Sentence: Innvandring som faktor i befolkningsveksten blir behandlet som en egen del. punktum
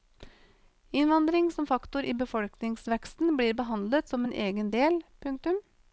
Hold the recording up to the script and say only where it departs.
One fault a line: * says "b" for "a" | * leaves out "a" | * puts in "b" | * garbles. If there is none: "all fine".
all fine